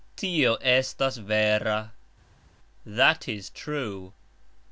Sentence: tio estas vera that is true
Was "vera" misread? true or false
false